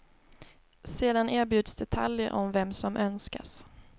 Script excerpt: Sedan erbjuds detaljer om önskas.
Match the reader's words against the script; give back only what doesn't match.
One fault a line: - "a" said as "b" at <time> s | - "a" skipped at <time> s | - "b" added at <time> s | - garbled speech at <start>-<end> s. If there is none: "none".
- "vem som" added at 2.5 s